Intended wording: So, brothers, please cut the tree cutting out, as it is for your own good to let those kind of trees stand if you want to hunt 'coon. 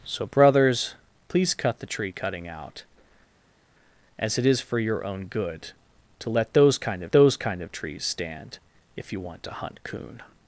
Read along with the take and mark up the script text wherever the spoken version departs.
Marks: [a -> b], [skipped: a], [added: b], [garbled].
So, brothers, please cut the tree cutting out, as it is for your own good to let those kind of [added: those kind of] trees stand if you want to hunt 'coon.